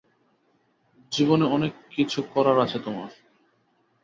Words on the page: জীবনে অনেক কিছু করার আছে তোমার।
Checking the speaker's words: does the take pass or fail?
pass